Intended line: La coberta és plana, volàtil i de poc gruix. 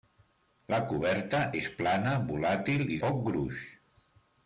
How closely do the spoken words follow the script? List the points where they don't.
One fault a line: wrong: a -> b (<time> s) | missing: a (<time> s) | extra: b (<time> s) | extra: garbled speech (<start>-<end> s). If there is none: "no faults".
missing: de (3.0 s)